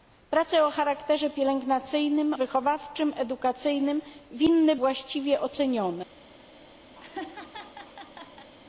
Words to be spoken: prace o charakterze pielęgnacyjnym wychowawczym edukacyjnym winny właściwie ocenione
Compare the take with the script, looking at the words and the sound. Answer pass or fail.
fail